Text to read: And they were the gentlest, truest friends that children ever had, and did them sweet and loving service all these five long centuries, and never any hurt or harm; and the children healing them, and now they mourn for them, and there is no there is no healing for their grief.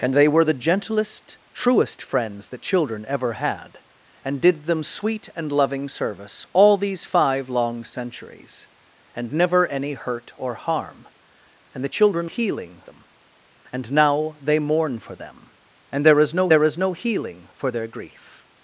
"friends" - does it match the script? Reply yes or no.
yes